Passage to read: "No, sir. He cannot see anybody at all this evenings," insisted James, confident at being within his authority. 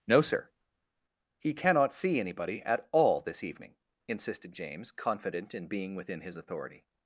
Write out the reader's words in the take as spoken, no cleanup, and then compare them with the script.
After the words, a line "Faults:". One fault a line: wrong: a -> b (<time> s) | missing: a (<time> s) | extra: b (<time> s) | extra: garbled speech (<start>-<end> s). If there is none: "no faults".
"No, sir. He cannot see anybody at all this evening," insisted James, confident in being within his authority.
Faults:
wrong: evenings -> evening (3.4 s)
wrong: at -> in (5.5 s)